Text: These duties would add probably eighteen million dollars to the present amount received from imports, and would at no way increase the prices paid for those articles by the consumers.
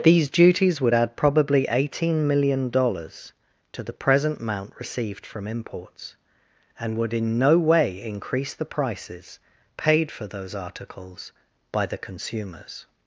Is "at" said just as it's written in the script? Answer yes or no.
no